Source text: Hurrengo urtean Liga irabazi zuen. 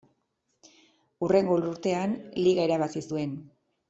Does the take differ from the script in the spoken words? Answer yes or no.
no